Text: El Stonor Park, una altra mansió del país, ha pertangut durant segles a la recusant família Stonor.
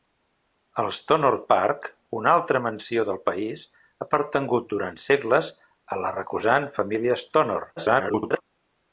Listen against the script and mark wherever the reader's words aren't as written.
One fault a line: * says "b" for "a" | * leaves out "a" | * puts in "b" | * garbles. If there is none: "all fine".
* garbles